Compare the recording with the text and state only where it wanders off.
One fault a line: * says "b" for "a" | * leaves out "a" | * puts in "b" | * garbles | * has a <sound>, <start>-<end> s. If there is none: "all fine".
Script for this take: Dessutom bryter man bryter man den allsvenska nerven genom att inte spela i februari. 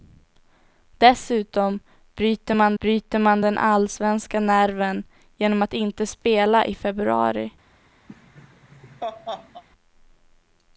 * has a laugh, 8.1-9.6 s